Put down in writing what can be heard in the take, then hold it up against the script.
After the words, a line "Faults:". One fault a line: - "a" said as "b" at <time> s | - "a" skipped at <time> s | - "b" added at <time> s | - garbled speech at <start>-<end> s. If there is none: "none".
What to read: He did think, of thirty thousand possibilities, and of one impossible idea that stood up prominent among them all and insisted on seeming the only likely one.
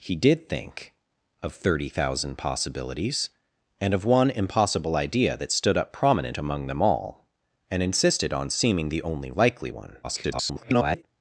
He did think, of thirty thousand possibilities, and of one impossible idea that stood up prominent among them all and insisted on seeming the only likely one. [garbled]
Faults:
- garbled speech at 10.0-11.0 s